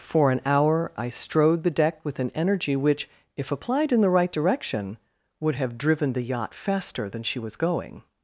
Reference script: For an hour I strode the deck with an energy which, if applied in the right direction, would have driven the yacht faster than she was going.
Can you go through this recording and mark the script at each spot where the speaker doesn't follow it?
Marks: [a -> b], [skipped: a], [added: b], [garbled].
For an hour I strode the deck with an energy which, if applied in the right direction, would have driven the yacht faster than she was going.